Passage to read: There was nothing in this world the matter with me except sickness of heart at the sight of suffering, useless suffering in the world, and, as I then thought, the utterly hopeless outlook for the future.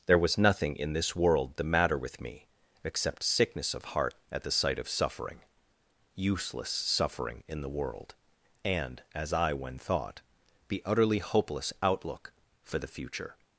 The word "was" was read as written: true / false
true